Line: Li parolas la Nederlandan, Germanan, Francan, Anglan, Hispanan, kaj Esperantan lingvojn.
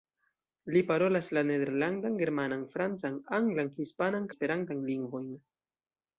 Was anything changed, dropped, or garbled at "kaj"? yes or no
yes